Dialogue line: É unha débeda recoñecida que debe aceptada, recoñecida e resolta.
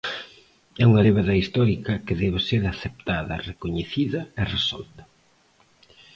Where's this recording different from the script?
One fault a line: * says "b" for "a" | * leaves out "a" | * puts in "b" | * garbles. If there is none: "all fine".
* says "histórica" for "recoñecida"
* puts in "ser"